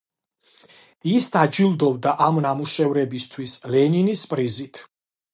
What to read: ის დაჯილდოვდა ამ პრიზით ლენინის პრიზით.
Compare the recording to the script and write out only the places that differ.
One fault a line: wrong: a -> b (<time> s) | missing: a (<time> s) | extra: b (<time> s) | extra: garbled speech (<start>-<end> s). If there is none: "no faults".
wrong: პრიზით -> ნამუშევრებისთვის (2.4 s)